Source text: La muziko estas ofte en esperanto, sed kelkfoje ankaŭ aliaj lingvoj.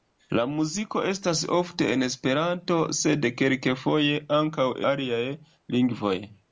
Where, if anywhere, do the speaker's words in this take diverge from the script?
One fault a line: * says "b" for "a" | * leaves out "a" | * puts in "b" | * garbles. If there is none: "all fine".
all fine